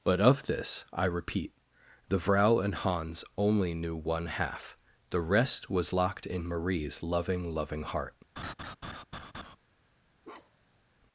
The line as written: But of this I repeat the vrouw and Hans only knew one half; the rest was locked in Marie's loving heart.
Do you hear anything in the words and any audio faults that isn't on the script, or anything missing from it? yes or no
yes